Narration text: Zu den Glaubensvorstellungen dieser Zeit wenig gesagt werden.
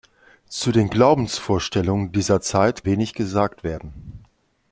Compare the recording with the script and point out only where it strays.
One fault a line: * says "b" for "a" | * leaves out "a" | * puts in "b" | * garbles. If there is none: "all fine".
all fine